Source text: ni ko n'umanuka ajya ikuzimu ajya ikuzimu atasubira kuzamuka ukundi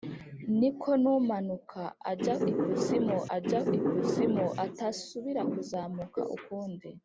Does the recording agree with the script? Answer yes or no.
yes